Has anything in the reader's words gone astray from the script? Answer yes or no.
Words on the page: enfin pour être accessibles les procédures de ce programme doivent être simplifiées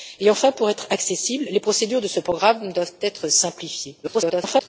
yes